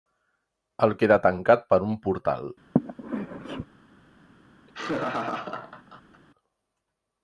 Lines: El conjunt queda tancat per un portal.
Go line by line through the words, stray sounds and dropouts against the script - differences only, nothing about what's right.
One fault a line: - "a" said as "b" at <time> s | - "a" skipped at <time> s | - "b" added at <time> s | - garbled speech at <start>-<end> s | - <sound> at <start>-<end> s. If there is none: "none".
- "conjunt" skipped at 0.9 s
- sneeze at 2.8-3.7 s
- laugh at 4.7-6.2 s